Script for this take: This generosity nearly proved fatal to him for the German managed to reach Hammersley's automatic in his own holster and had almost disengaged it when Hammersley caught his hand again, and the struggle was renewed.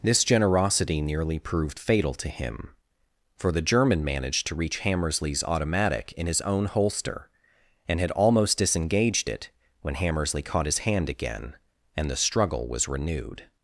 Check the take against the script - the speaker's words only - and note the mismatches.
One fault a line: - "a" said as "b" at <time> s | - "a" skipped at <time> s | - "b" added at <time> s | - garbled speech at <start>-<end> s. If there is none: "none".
none